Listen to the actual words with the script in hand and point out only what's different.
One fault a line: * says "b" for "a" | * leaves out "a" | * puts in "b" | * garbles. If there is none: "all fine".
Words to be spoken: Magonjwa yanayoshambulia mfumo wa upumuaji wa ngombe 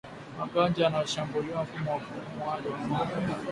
all fine